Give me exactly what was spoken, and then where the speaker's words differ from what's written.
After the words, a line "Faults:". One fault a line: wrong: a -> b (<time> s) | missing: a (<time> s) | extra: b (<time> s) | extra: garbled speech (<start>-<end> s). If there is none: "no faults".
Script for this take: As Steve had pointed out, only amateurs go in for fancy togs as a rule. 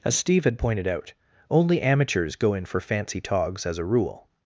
As Steve had pointed out, only amateurs go in for fancy togs as a rule.
Faults:
no faults